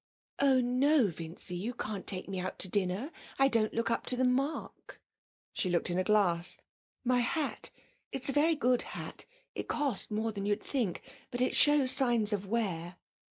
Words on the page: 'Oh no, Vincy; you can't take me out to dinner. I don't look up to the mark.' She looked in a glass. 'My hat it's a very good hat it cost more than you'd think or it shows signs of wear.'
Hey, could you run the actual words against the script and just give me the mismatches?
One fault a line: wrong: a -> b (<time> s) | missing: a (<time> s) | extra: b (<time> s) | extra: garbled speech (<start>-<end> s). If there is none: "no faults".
wrong: or -> but (11.3 s)